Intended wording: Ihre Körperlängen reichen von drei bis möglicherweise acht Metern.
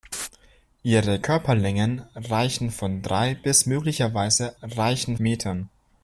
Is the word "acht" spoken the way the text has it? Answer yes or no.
no